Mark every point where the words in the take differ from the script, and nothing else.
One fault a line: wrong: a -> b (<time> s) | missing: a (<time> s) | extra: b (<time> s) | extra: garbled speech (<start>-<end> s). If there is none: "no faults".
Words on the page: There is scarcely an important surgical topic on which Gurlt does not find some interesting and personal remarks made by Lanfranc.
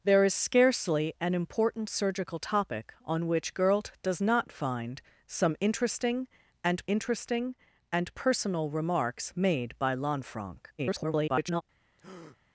extra: interesting and (6.9 s)
extra: garbled speech (10.8-11.6 s)